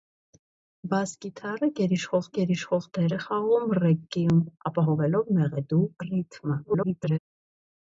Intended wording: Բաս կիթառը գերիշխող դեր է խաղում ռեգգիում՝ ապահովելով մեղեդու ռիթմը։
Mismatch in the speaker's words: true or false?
true